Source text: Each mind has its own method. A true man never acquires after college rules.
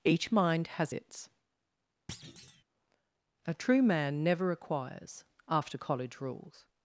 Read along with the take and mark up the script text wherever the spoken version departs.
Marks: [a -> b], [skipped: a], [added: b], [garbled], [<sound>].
Each mind has its [skipped: own method.] [thud] A true man never acquires after college rules.